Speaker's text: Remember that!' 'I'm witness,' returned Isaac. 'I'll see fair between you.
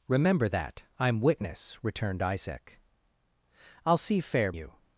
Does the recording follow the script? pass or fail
fail